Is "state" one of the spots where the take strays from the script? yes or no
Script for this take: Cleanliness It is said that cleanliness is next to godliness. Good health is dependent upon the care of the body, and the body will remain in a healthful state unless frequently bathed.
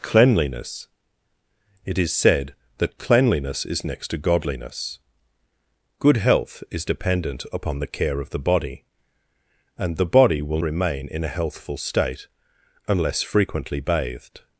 no